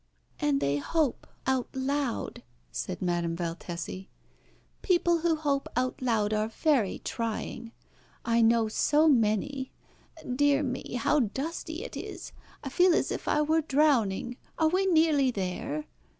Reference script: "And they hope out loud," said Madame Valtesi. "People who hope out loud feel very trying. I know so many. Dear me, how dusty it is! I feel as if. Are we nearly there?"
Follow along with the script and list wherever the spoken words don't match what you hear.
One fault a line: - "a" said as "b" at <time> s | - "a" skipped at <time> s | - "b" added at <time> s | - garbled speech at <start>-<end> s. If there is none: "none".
- "feel" said as "are" at 6.3 s
- "I were drowning" added at 13.3 s